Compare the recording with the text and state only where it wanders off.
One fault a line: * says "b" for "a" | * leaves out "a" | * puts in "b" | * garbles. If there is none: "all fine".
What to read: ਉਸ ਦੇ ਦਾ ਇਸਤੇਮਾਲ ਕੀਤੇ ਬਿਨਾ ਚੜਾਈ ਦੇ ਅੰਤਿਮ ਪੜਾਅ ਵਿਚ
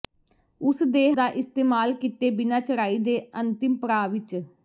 all fine